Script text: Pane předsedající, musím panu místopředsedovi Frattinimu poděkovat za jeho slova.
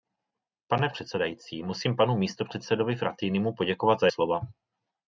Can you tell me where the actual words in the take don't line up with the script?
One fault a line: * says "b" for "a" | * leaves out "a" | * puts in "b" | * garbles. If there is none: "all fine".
* leaves out "jeho"